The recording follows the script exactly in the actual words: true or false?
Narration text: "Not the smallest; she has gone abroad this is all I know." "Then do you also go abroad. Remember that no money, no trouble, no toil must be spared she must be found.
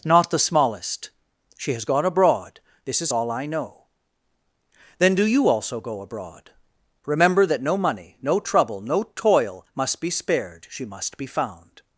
true